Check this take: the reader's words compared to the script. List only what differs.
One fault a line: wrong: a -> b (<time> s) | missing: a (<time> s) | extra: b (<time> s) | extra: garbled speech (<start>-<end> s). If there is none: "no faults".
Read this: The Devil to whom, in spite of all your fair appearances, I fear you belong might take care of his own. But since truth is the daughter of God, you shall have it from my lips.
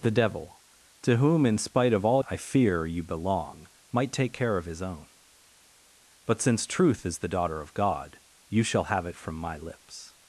missing: your fair appearances (2.2 s)